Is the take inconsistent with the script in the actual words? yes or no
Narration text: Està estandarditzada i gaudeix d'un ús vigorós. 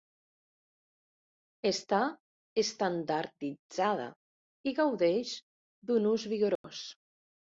no